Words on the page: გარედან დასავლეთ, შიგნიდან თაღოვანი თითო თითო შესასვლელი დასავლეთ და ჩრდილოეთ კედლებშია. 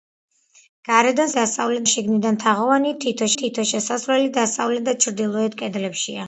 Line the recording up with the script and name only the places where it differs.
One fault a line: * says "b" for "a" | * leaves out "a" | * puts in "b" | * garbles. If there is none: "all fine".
all fine